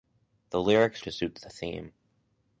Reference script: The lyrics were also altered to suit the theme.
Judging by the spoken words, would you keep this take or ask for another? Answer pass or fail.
fail